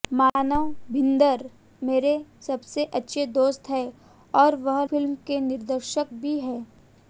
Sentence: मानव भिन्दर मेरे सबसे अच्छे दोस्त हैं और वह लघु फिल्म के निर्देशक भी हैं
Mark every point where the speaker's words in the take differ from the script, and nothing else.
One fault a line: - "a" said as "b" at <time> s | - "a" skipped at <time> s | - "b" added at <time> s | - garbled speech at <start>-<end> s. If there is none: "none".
- "लघु" skipped at 4.8 s